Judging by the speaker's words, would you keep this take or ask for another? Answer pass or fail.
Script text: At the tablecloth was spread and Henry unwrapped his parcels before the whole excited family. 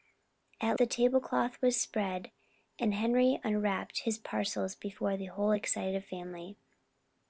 pass